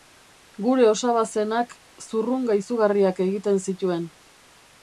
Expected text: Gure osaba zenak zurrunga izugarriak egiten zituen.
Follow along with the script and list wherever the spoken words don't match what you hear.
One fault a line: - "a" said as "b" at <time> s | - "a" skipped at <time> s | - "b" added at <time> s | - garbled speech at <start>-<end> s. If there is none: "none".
none